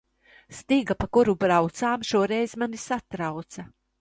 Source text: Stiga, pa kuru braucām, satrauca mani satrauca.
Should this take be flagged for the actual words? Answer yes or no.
yes